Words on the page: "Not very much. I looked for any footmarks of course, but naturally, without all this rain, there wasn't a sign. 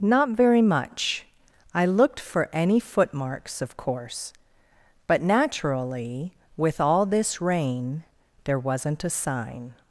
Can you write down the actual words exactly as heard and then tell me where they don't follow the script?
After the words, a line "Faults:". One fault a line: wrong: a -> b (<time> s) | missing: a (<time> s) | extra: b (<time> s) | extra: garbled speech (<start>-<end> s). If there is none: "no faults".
"Not very much. I looked for any footmarks of course, but naturally, with all this rain, there wasn't a sign.
Faults:
wrong: without -> with (6.6 s)